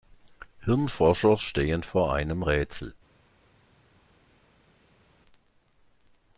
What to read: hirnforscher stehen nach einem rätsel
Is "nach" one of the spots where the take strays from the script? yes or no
yes